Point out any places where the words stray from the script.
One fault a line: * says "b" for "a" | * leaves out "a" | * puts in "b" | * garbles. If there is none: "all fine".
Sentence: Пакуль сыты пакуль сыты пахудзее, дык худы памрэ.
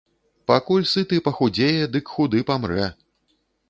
* leaves out "пакуль сыты"